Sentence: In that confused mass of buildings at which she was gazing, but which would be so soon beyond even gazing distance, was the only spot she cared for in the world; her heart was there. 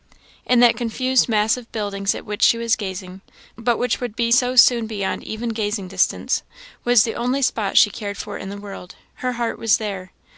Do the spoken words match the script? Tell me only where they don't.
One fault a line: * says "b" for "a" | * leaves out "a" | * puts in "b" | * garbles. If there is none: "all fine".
all fine